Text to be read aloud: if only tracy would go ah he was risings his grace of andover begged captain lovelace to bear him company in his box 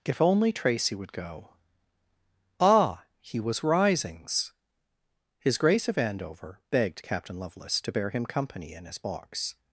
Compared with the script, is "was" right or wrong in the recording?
right